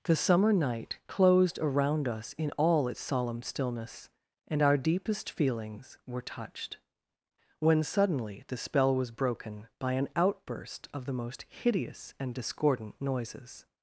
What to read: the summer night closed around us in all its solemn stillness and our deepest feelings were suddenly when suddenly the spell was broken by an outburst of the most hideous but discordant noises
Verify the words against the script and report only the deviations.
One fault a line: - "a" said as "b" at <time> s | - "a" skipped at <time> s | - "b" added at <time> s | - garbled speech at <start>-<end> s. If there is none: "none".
- "suddenly" said as "touched" at 6.2 s
- "but" said as "and" at 12.2 s